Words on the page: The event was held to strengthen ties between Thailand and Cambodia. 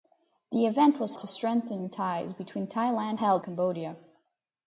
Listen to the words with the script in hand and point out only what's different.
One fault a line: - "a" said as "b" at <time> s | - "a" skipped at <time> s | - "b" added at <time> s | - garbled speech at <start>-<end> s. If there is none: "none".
- "held" skipped at 1.2 s
- "and" said as "held" at 3.2 s